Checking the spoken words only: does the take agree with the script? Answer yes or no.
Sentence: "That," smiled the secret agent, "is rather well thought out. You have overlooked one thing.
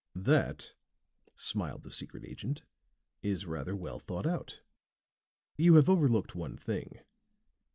yes